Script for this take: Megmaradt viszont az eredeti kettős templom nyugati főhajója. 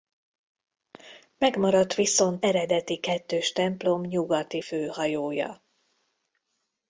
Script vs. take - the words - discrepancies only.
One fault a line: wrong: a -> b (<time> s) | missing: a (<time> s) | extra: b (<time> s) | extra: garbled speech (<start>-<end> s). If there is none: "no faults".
missing: az (2.5 s)